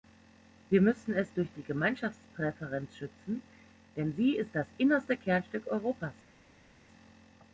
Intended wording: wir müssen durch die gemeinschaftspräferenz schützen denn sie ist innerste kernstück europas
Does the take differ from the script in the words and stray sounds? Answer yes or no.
yes